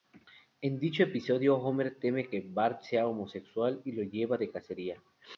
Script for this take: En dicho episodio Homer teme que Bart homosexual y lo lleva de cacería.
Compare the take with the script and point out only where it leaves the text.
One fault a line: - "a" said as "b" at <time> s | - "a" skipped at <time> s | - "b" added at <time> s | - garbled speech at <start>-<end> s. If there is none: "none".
- "sea" added at 2.8 s